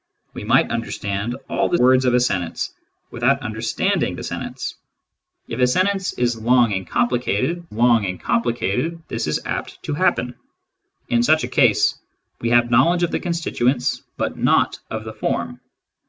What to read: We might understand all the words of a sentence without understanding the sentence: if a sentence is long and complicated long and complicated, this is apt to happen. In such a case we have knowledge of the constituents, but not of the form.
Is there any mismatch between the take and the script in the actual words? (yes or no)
no